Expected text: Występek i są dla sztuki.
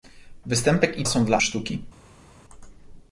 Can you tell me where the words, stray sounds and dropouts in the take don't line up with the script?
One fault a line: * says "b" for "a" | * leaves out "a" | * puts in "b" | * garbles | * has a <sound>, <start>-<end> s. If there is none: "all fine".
all fine